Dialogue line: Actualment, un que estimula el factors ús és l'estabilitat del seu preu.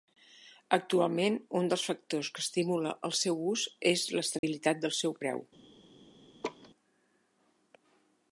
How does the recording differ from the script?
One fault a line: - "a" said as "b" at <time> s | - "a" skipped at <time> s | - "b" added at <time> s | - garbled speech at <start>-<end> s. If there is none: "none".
- "dels factors" added at 1.7 s
- "factors" said as "seu" at 3.2 s